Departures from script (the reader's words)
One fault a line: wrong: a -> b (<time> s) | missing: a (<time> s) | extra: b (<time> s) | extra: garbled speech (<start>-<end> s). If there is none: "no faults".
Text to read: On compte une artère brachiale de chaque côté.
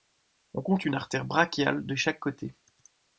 no faults